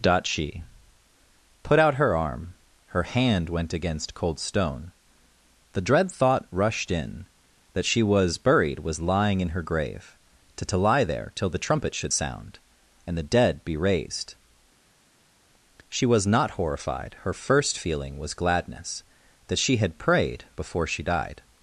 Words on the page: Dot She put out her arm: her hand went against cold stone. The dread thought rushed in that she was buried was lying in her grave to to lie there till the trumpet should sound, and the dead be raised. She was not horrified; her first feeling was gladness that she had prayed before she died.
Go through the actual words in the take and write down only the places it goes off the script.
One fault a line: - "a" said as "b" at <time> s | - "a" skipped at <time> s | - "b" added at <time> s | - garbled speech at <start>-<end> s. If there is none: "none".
none